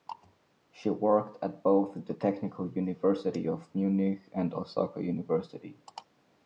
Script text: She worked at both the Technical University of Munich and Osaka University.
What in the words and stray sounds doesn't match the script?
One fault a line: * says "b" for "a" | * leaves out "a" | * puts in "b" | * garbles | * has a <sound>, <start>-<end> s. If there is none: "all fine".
all fine